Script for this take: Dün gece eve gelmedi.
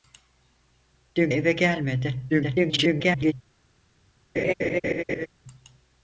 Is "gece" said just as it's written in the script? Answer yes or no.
no